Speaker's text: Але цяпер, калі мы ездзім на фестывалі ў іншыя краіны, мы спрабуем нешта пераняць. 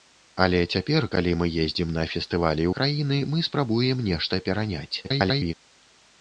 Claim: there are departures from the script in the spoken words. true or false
true